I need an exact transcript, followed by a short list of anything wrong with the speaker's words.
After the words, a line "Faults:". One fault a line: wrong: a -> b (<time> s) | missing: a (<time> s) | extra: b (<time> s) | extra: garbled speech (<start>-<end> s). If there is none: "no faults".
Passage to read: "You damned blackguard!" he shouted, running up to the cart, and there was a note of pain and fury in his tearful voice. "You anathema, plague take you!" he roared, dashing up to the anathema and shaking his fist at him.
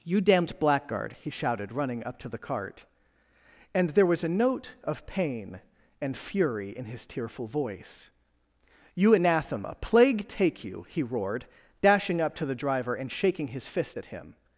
"You damned blackguard!" he shouted, running up to the cart, and there was a note of pain and fury in his tearful voice. "You anathema, plague take you!" he roared, dashing up to the driver and shaking his fist at him.
Faults:
wrong: anathema -> driver (12.6 s)